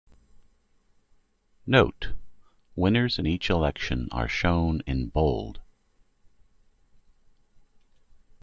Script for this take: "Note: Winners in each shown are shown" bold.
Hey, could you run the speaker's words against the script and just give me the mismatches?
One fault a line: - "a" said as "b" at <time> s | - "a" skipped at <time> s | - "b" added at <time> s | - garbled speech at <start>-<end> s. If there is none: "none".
- "shown" said as "election" at 3.5 s
- "in" added at 4.9 s